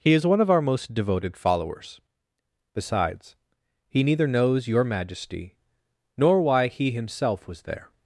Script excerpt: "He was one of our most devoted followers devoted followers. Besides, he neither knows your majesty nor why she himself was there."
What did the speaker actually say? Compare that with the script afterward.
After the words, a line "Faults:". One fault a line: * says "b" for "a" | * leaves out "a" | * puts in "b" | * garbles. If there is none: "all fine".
"He is one of our most devoted followers. Besides, he neither knows your majesty nor why he himself was there."
Faults:
* says "is" for "was"
* leaves out "devoted followers"
* says "he" for "she"